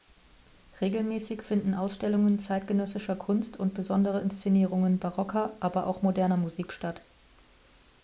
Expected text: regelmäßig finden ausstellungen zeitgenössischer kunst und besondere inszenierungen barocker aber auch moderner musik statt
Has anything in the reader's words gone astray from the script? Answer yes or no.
no